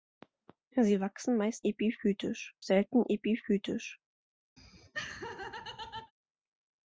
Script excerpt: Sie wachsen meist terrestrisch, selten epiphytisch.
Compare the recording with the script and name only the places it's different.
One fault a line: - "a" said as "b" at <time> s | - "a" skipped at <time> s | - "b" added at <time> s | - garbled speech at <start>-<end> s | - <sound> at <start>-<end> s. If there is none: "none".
- "terrestrisch" said as "epiphytisch" at 1.6 s
- laugh at 4.6-6.1 s